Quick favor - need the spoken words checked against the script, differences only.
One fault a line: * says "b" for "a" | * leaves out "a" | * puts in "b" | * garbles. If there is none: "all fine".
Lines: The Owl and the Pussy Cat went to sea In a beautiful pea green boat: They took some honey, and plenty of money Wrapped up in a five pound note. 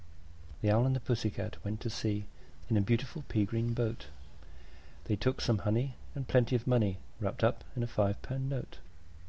all fine